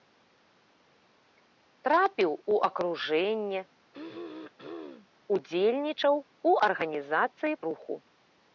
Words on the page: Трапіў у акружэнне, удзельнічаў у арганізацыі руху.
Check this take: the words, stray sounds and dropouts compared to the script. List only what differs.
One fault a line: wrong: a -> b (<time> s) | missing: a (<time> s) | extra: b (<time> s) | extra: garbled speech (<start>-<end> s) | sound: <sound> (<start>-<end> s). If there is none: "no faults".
sound: throat clearing (3.9-5.1 s)